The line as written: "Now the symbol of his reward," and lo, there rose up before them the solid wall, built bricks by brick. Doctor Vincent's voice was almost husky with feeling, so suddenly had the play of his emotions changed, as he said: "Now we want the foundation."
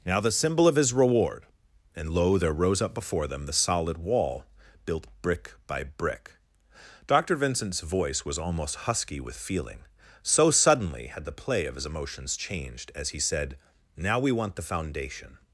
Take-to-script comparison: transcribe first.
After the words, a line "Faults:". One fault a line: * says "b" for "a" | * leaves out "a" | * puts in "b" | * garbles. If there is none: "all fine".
"Now the symbol of his reward," and lo, there rose up before them the solid wall, built brick by brick. Doctor Vincent's voice was almost husky with feeling, so suddenly had the play of his emotions changed, as he said: "Now we want the foundation."
Faults:
* says "brick" for "bricks"